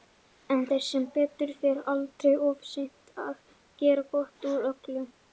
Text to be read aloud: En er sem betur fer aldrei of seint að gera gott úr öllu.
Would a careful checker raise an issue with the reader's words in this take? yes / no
no